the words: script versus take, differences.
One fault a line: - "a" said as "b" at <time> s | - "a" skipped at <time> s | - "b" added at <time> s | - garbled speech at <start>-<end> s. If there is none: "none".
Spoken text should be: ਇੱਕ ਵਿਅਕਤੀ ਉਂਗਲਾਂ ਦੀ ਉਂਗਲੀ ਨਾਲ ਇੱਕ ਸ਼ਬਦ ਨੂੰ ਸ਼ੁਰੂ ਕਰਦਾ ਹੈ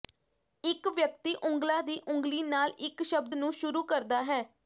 none